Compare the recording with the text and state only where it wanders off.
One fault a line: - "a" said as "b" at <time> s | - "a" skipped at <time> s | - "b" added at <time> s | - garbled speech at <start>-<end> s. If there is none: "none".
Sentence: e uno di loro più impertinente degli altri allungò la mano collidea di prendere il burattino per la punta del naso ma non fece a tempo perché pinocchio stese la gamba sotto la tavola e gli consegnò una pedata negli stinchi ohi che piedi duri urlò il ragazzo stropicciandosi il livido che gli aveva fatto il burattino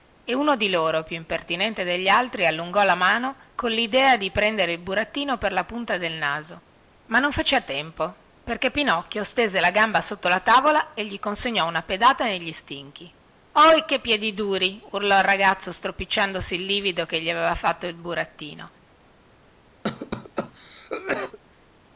none